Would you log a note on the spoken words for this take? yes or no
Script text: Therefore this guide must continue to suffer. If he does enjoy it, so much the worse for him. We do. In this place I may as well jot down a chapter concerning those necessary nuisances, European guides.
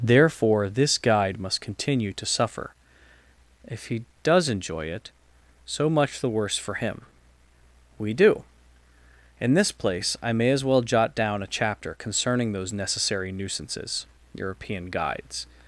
no